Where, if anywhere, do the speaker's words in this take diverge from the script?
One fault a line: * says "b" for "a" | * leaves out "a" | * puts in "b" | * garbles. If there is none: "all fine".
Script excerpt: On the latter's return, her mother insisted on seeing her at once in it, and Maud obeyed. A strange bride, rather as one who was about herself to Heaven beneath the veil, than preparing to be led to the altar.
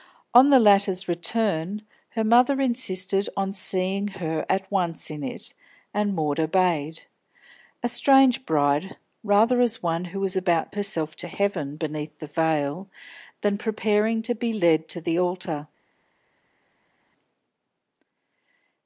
all fine